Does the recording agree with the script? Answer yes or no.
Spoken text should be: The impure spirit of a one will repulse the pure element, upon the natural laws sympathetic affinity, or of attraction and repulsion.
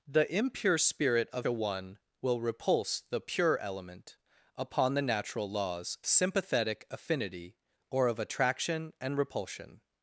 yes